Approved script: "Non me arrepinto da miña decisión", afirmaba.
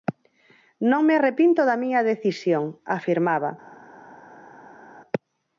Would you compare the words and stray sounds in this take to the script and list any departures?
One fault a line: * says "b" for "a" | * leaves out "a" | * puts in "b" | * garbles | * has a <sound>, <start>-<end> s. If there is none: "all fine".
all fine